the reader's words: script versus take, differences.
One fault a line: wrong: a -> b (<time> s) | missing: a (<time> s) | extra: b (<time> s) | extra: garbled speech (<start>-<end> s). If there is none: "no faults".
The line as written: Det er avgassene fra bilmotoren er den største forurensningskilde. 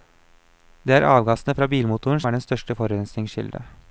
no faults